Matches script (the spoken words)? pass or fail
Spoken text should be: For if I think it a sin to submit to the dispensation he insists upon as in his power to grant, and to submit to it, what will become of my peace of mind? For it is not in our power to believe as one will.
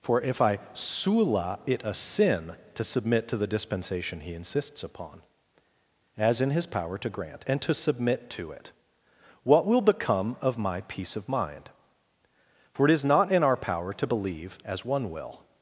fail